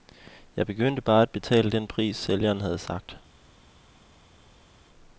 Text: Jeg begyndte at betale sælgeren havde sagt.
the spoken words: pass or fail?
fail